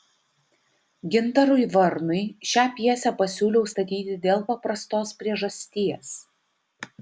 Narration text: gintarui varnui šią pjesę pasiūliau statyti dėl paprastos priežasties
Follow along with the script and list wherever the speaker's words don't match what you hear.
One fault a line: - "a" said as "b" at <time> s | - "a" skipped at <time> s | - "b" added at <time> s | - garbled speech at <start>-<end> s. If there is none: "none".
none